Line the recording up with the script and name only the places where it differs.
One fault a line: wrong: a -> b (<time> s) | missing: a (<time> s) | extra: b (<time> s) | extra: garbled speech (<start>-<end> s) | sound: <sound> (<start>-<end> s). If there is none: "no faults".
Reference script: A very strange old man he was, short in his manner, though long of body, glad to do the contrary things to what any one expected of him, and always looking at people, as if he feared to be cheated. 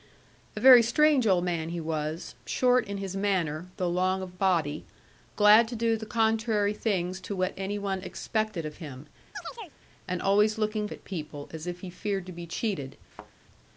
sound: chirp (9.3-9.8 s)
sound: thud (13.1-13.3 s)